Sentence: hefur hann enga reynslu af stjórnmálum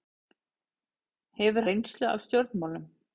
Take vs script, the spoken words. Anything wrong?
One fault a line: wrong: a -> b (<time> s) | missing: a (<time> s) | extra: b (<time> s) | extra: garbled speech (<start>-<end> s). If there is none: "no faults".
missing: hann enga (1.7 s)